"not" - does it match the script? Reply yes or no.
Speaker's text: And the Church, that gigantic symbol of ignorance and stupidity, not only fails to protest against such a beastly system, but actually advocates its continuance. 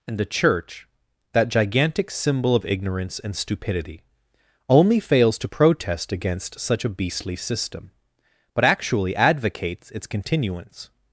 no